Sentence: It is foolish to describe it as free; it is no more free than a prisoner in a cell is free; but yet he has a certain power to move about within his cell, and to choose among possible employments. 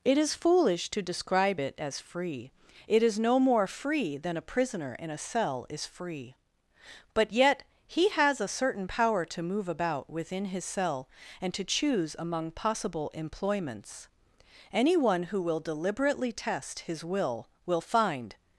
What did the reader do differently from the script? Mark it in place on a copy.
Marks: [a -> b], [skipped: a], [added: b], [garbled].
It is foolish to describe it as free; it is no more free than a prisoner in a cell is free; but yet he has a certain power to move about within his cell, and to choose among possible employments. [added: Anyone who will deliberately test his will will find]